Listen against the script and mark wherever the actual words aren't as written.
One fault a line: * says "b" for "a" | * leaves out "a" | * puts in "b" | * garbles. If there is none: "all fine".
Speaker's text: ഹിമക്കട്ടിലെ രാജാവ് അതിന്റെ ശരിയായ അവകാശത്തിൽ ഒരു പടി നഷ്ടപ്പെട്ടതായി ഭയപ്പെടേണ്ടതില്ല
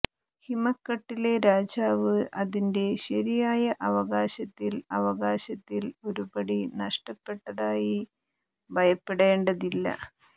* puts in "അവകാശത്തിൽ"